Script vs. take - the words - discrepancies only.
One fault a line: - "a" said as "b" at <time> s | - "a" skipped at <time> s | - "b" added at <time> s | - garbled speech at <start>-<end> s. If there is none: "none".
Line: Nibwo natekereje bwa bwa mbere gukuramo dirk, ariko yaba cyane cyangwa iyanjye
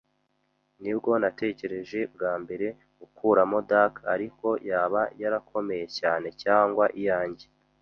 - "bwa" skipped at 2.3 s
- "yarakomeye" added at 5.2 s